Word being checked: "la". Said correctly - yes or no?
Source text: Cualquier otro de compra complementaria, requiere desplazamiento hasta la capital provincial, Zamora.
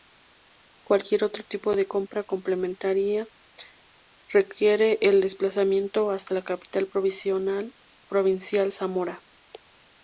yes